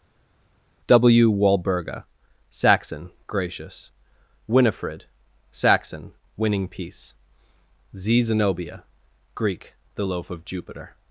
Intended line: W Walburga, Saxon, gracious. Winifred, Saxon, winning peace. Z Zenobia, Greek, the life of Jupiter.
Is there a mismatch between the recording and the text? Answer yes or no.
yes